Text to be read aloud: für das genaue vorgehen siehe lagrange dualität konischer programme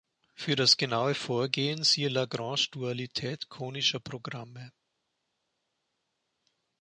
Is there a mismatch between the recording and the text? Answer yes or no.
no